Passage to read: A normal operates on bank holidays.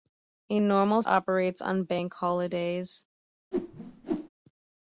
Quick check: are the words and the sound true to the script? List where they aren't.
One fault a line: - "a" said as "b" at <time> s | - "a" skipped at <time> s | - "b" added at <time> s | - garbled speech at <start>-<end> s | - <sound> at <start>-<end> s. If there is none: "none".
- whoosh at 3.5-4.3 s